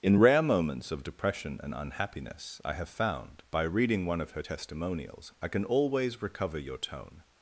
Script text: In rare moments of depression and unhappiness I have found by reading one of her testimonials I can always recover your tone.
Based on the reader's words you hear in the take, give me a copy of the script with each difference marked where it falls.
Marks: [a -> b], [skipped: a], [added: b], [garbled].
In rare moments of depression and unhappiness I have found by reading one of her testimonials I can always recover your tone.